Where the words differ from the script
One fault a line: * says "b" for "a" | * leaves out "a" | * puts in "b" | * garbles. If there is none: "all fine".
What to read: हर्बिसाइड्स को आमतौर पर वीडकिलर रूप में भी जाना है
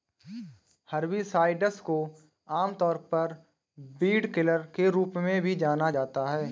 * puts in "के"
* puts in "जाता"